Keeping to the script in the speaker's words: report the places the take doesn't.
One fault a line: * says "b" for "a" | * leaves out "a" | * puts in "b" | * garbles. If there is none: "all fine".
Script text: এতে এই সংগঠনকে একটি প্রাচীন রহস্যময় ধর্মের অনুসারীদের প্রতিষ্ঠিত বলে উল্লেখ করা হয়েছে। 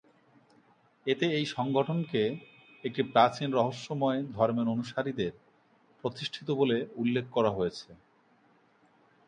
all fine